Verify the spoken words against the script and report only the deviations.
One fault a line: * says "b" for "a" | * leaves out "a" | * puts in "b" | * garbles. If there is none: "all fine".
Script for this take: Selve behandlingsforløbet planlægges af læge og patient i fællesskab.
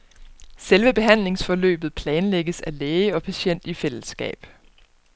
all fine